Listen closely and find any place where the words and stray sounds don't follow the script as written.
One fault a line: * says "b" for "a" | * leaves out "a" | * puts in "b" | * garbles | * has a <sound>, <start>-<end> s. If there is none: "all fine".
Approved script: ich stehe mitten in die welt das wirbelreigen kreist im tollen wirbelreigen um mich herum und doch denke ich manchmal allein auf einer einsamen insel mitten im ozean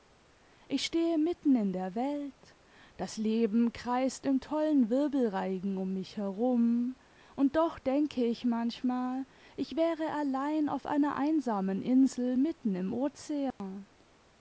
* says "der" for "die"
* says "leben" for "wirbelreigen"
* puts in "ich wäre"
* has a dropout, 13.5-13.6 s